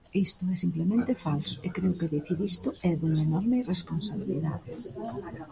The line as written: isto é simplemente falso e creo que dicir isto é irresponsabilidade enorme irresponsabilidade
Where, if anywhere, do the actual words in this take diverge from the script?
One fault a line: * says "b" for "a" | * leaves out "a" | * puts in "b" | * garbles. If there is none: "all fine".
* says "dunha" for "irresponsabilidade"